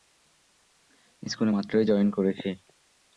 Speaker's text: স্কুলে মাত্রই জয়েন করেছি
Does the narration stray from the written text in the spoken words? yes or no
no